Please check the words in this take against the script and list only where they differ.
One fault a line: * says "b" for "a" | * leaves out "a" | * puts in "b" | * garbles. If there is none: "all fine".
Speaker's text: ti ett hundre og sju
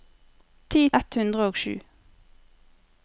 all fine